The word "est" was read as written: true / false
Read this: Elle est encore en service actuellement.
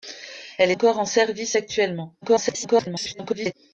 false